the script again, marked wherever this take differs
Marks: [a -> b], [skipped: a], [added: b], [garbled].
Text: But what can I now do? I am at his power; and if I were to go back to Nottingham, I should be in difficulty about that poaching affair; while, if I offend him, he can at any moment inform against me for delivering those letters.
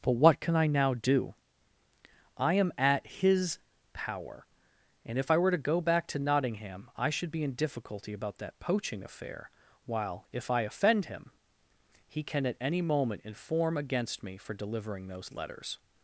But what can I now do? I am at his power; and if I were to go back to Nottingham, I should be in difficulty about that poaching affair; while, if I offend him, he can at any moment inform against me for delivering those letters.